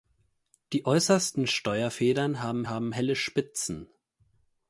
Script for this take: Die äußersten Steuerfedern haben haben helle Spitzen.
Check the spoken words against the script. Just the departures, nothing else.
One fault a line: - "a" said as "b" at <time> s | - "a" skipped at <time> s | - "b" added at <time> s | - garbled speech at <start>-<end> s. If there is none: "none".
none